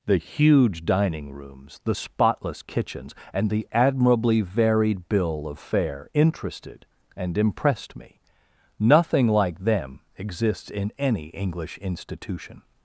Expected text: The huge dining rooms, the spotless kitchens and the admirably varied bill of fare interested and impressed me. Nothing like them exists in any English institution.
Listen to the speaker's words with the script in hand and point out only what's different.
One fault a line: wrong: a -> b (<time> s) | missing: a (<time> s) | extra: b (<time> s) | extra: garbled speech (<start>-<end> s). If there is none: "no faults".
no faults